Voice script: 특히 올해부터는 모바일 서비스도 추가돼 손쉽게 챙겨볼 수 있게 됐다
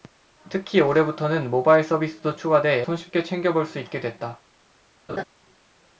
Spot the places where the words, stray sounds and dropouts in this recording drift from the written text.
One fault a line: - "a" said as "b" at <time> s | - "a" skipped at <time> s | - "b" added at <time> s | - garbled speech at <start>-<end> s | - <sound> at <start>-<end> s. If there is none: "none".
- laugh at 5.1-5.2 s